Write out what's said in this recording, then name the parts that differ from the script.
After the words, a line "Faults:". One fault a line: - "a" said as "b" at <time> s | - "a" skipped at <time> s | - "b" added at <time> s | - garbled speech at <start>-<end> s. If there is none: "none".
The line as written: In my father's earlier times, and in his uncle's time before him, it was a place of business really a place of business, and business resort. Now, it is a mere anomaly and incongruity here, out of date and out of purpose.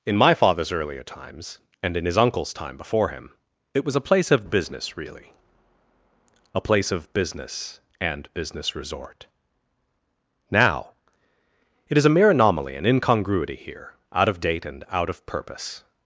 In my father's earlier times, and in his uncle's time before him, it was a place of business really a place of business, and business resort. Now, it is a mere anomaly and incongruity here, out of date and out of purpose.
Faults:
none